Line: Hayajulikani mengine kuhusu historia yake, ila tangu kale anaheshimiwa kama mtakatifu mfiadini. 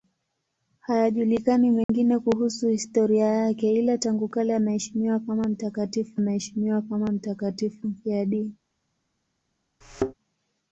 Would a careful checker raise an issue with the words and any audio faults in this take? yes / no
yes